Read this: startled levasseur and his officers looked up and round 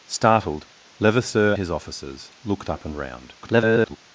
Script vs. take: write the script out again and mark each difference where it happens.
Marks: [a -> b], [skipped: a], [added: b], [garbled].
startled levasseur [skipped: and] his officers looked up and round [garbled]